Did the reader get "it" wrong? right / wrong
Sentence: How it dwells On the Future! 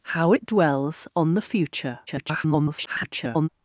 right